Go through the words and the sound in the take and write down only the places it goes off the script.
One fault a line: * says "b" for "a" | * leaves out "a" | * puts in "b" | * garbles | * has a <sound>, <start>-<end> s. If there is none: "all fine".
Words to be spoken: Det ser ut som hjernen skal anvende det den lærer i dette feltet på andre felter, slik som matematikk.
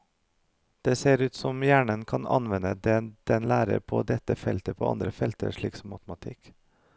* says "kan" for "skal"
* says "på" for "i"